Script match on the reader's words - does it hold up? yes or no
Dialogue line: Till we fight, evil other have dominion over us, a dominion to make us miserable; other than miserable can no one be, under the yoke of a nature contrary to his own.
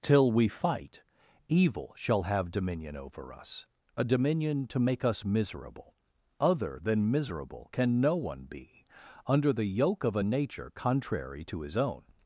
no